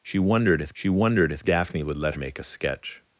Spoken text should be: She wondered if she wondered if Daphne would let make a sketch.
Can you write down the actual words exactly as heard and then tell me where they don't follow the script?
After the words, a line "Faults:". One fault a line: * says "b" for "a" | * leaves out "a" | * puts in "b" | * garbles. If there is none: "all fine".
She wondered if she wondered if Daphne would let make a sketch.
Faults:
all fine